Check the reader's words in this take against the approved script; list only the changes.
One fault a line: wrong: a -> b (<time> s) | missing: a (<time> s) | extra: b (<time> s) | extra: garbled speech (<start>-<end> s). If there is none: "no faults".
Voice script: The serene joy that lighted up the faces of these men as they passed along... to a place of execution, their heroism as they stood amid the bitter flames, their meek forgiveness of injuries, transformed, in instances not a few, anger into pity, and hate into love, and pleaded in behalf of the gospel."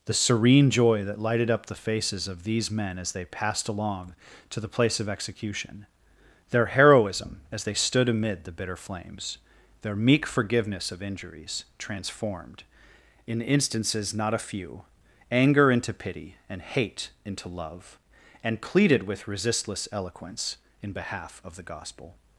wrong: a -> the (4.6 s)
extra: with resistless eloquence (19.1 s)